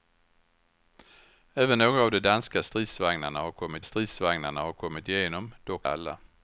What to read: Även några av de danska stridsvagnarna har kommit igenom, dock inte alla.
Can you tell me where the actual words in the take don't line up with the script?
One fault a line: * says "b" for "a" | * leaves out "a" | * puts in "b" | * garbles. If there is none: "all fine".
* puts in "stridsvagnarna har kommit"
* leaves out "inte"